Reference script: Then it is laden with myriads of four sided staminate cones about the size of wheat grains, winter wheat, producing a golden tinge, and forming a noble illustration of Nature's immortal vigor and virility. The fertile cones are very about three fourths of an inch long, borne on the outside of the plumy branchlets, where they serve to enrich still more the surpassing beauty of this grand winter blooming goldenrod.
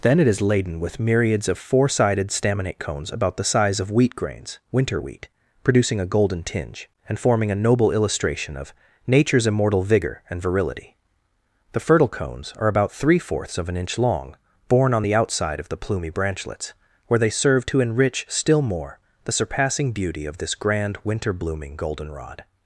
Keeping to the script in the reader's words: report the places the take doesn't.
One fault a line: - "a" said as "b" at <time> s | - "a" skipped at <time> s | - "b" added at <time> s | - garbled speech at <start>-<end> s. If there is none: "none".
- "very" skipped at 12.7 s